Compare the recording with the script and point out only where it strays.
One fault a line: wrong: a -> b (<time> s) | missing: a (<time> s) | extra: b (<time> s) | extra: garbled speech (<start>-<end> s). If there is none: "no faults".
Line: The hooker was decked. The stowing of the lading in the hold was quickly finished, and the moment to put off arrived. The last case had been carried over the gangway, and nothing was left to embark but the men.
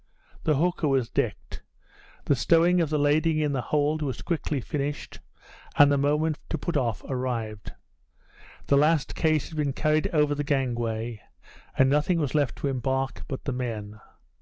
no faults